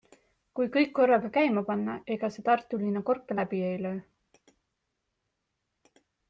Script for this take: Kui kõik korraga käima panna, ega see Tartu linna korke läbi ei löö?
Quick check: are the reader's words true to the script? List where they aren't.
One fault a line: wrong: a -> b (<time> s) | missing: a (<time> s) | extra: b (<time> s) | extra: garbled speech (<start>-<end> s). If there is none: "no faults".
no faults